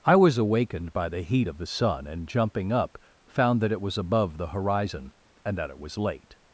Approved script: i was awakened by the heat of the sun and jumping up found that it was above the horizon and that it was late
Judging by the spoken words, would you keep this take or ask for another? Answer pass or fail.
pass